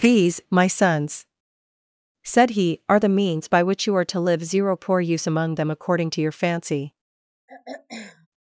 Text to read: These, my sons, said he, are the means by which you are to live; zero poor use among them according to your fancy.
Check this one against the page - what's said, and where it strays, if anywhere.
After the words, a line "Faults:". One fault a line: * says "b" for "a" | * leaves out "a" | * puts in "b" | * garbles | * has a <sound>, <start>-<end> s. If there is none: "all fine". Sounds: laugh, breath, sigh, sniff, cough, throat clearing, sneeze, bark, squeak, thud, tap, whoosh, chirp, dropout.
These, my sons, said he, are the means by which you are to live; zero poor use among them according to your fancy.
Faults:
* has a throat clearing, 7.5-8.3 s